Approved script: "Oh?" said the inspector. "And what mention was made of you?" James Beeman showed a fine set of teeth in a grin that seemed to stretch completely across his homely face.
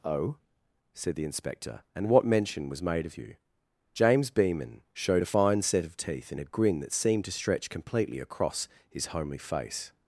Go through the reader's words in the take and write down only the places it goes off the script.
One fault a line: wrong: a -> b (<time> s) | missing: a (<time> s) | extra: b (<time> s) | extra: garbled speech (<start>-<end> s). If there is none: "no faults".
no faults